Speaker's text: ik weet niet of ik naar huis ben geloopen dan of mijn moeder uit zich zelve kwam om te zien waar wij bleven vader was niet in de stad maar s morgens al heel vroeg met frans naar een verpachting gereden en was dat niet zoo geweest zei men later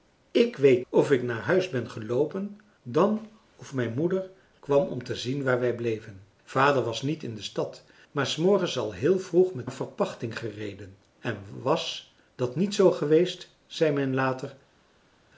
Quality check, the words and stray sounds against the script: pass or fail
fail